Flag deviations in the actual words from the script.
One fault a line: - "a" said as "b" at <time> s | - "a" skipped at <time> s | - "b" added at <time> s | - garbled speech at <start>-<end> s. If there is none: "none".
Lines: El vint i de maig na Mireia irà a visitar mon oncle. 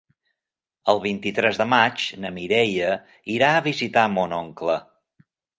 - "tres" added at 1.4 s